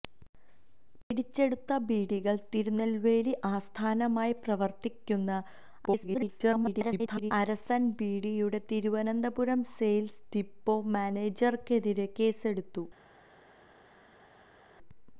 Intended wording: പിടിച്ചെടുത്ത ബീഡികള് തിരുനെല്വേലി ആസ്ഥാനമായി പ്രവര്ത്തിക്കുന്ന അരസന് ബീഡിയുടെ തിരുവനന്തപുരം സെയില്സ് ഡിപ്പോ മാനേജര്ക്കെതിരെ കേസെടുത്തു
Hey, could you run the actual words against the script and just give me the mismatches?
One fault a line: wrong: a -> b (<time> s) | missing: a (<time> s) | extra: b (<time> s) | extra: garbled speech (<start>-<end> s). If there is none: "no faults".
extra: garbled speech (5.8-7.3 s)